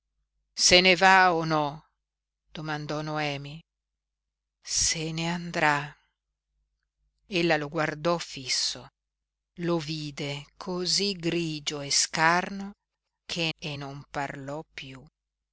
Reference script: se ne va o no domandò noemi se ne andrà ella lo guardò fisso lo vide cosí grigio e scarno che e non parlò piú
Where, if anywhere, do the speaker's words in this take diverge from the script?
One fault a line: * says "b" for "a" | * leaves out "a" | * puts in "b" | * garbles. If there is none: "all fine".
all fine